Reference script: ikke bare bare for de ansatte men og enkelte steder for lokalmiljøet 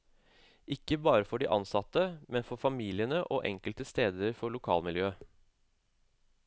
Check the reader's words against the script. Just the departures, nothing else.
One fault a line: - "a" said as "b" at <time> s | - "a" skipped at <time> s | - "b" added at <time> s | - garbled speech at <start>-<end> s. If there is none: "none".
- "bare" skipped at 1.2 s
- "for familiene" added at 2.5 s